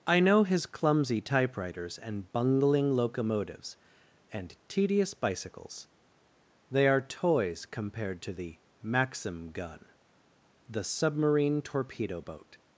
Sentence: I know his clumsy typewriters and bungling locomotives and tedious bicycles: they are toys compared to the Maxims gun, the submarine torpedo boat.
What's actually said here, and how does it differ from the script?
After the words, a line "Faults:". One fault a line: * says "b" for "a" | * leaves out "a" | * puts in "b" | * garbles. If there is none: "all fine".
I know his clumsy typewriters and bungling locomotives and tedious bicycles: they are toys compared to the Maxim gun, the submarine torpedo boat.
Faults:
* says "Maxim" for "Maxims"